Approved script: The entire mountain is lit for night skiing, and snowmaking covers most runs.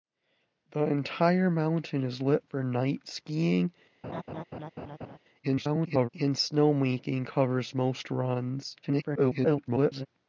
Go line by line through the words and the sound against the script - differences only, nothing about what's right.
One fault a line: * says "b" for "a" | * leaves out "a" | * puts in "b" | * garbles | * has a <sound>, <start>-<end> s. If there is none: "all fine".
* has a laugh, 4.0-5.2 s
* garbles
* garbles